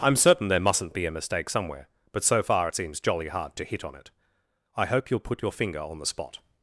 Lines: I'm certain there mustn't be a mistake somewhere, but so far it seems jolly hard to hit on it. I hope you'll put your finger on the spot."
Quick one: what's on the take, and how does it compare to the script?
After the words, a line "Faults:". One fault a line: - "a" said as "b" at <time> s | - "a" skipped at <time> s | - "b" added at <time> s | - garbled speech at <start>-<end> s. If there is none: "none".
I'm certain there mustn't be a mistake somewhere, but so far it seems jolly hard to hit on it. I hope you'll put your finger on the spot."
Faults:
none